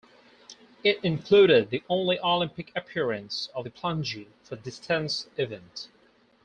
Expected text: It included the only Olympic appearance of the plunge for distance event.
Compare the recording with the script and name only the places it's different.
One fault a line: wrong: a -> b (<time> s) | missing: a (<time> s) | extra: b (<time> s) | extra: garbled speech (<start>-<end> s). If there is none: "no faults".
no faults